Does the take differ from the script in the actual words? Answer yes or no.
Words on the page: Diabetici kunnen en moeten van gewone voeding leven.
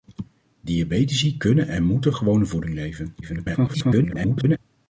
yes